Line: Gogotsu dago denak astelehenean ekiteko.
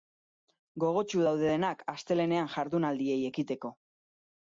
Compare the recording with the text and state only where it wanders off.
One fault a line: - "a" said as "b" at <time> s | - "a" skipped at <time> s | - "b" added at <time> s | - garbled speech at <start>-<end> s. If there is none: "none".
- "dago" said as "daude" at 1.2 s
- "jardunaldiei" added at 2.6 s